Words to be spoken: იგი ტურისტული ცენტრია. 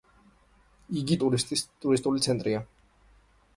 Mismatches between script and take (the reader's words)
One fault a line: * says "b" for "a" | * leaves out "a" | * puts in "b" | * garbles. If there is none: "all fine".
all fine